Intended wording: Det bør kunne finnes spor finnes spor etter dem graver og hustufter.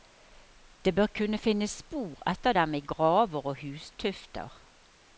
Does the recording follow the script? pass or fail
fail